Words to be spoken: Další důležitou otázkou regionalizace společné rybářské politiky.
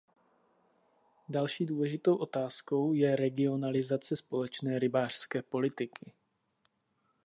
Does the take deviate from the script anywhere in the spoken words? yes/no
yes